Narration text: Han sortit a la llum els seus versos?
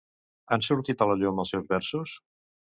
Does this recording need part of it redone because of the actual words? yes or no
no